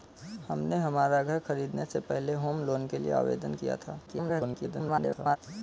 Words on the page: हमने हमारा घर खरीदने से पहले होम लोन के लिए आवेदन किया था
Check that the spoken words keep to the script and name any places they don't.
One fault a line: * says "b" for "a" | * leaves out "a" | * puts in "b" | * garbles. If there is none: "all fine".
* garbles